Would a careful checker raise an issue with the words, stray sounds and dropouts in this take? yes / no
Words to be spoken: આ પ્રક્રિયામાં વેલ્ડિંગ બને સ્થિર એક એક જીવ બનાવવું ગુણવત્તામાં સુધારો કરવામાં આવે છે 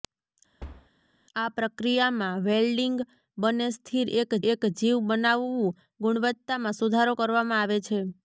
yes